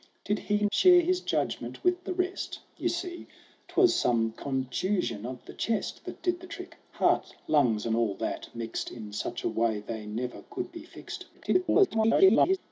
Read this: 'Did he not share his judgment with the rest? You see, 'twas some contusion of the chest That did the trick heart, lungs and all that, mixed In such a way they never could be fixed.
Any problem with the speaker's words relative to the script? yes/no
yes